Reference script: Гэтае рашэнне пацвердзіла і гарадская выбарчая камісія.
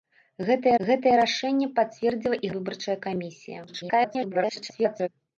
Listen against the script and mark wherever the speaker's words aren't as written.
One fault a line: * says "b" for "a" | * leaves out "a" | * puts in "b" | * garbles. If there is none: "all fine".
* puts in "гэтае"
* leaves out "гарадская"
* garbles